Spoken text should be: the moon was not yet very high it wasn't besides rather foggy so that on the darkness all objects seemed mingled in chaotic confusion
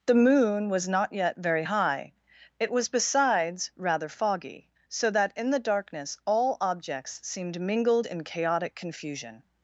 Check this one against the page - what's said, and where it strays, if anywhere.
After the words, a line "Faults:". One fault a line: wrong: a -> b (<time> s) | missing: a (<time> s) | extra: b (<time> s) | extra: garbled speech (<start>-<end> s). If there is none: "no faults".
the moon was not yet very high it was besides rather foggy so that in the darkness all objects seemed mingled in chaotic confusion
Faults:
wrong: wasn't -> was (2.7 s)
wrong: on -> in (5.3 s)